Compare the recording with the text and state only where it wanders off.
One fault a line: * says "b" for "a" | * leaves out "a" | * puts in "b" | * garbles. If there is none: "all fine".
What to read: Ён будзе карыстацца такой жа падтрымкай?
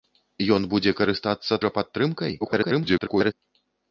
* leaves out "такой"
* garbles